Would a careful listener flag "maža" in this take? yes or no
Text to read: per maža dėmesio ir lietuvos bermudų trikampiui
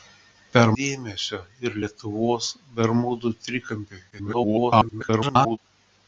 yes